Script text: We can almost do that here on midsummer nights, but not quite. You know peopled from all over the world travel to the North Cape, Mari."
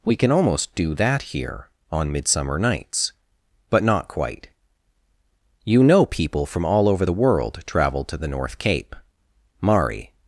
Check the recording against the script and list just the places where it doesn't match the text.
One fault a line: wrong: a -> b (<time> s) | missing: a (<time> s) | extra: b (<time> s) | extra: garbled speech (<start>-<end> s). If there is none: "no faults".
wrong: peopled -> people (6.0 s)